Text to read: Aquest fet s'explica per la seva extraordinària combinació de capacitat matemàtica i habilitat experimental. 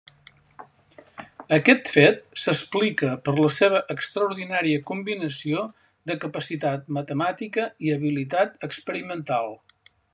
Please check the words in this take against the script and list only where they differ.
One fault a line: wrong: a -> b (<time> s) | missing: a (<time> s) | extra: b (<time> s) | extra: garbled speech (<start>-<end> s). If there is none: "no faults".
no faults